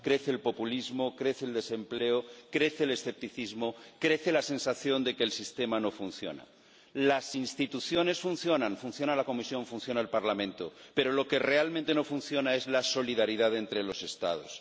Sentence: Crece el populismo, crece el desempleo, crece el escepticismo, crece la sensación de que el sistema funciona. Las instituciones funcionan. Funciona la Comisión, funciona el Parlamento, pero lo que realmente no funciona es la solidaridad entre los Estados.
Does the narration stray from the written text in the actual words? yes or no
yes